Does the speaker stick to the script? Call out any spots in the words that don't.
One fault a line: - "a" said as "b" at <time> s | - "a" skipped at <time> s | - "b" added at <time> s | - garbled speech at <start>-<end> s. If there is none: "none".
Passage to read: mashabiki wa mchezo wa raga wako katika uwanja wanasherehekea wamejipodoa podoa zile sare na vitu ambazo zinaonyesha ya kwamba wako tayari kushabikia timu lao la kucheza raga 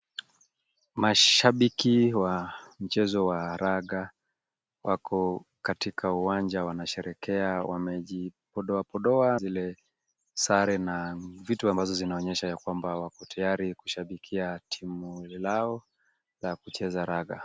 none